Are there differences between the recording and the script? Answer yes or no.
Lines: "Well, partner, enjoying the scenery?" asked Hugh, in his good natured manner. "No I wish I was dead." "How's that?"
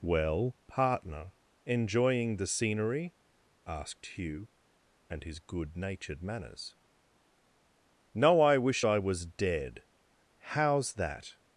yes